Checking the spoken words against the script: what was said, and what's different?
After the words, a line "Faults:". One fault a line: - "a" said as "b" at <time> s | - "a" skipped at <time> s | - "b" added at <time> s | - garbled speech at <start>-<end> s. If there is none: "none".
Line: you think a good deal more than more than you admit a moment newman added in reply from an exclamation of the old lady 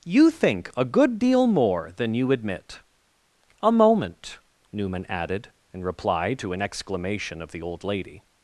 you think a good deal more than you admit a moment newman added in reply to an exclamation of the old lady
Faults:
- "more than" skipped at 2.1 s
- "from" said as "to" at 6.3 s